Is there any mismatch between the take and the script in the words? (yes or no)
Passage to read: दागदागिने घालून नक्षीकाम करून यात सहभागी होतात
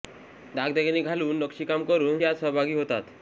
no